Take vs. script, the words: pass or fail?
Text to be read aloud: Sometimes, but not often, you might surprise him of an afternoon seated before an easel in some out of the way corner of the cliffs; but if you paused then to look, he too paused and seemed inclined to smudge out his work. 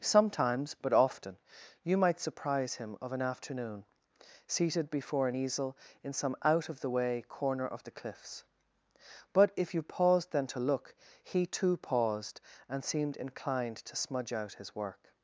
fail